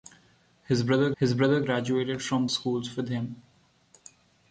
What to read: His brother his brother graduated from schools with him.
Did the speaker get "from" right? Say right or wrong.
right